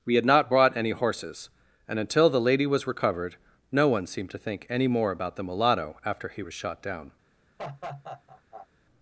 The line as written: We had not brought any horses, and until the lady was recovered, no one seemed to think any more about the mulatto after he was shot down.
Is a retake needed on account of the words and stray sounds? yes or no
yes